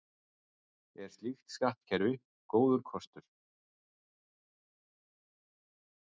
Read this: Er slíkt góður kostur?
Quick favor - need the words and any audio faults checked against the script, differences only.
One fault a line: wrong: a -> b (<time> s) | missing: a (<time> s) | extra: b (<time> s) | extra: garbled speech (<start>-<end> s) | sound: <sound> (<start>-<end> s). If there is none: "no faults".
extra: skattkerfi (1.6 s)